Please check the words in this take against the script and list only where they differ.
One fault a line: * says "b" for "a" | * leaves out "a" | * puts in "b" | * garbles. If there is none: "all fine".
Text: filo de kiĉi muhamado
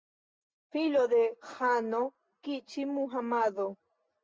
* puts in "ĥano"